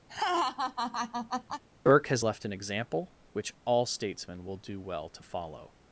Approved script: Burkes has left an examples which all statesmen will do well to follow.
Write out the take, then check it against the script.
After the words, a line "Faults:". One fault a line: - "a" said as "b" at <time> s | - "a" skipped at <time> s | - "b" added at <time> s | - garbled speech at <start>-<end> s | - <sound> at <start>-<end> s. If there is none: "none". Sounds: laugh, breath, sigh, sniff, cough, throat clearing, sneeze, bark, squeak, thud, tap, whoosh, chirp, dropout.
Burke has left an example which all statesmen will do well to follow.
Faults:
- laugh at 0.1-1.6 s
- "Burkes" said as "Burke" at 1.9 s
- "examples" said as "example" at 2.5 s